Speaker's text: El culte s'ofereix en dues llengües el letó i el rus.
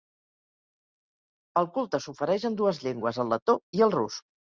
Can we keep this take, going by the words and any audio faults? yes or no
yes